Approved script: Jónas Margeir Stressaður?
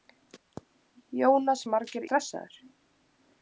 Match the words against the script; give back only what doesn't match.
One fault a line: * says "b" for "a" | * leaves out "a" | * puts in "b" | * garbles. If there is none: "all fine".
all fine